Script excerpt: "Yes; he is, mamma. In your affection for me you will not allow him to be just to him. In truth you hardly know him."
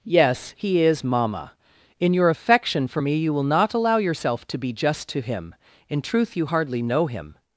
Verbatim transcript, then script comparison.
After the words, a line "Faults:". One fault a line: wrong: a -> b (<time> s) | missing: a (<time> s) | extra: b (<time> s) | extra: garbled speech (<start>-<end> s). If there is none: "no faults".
"Yes; he is, mamma. In your affection for me you will not allow yourself to be just to him. In truth you hardly know him."
Faults:
wrong: him -> yourself (4.0 s)